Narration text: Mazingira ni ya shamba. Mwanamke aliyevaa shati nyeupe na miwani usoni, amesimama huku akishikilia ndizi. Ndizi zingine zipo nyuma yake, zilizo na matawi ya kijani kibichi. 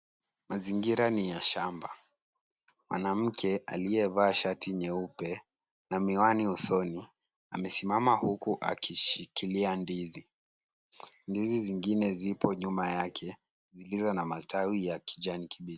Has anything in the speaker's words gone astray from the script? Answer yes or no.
no